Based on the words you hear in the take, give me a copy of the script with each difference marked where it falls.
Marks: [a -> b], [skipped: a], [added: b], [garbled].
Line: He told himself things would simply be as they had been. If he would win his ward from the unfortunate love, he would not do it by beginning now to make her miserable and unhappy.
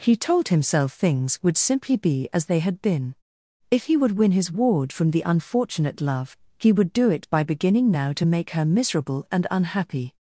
He told himself things would simply be as they had been. If he would win his ward from the unfortunate love, he would [skipped: not] do it by beginning now to make her miserable and unhappy.